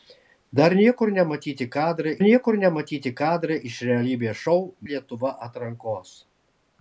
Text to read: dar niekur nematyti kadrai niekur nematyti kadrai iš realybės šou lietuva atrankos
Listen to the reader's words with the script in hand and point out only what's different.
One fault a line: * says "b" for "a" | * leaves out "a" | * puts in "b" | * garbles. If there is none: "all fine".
all fine